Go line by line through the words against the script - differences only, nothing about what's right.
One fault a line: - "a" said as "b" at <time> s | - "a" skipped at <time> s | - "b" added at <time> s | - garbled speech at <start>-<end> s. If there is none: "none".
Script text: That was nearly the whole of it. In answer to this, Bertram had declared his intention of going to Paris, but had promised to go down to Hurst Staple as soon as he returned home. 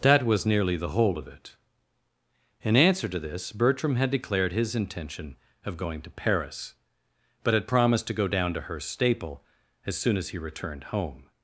none